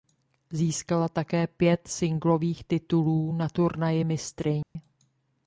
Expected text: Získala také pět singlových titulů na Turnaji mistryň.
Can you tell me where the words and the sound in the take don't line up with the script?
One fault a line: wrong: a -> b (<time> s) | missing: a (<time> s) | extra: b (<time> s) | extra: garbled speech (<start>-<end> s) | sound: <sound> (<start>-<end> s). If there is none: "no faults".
sound: dropout (4.6-4.8 s)